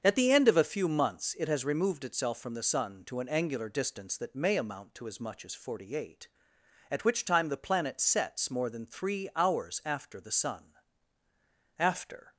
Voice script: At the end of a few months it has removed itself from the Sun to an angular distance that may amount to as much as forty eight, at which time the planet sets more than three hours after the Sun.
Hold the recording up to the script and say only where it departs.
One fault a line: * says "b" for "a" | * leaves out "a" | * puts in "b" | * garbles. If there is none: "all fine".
* puts in "After"